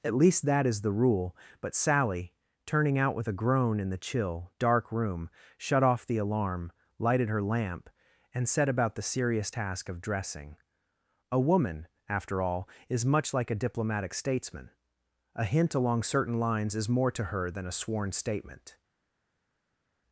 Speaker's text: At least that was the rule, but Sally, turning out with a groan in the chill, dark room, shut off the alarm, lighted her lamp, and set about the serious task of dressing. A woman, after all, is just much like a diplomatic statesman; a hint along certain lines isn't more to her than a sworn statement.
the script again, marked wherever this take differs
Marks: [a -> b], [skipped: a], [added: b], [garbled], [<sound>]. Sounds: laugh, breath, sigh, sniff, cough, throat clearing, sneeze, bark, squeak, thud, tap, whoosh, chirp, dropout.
At least that [was -> is] the rule, but Sally, turning out with a groan in the chill, dark room, shut off the alarm, lighted her lamp, and set about the serious task of dressing. A woman, after all, is [skipped: just] much like a diplomatic statesman; a hint along certain lines [isn't -> is] more to her than a sworn statement.